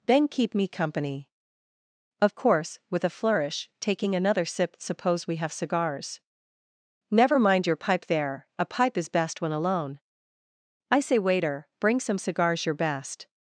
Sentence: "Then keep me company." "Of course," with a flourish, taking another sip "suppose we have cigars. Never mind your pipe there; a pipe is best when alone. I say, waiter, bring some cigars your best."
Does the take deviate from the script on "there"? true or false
false